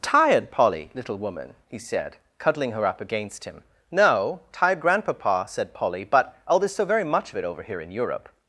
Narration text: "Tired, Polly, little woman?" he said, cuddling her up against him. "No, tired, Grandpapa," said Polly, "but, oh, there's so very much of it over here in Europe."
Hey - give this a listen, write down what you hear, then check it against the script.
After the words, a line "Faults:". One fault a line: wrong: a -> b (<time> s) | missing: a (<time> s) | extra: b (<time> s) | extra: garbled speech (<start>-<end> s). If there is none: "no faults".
"Tired, Polly, little woman?" he said, cuddling her up against him. "No, tired, Grandpapa," said Polly, "but, oh, there's so very much of it over here in Europe."
Faults:
no faults